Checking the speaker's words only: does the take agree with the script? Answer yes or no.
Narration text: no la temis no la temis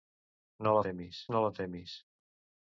yes